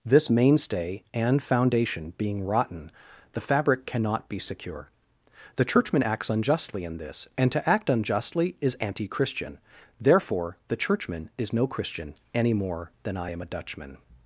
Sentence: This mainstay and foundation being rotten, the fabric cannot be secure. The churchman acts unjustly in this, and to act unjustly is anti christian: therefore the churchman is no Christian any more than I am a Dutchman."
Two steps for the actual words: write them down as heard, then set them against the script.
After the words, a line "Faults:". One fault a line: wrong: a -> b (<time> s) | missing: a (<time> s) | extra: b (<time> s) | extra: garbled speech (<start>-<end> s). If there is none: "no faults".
This mainstay and foundation being rotten, the fabric cannot be secure. The churchman acts unjustly in this, and to act unjustly is anti christian: therefore the churchman is no Christian any more than I am a Dutchman."
Faults:
no faults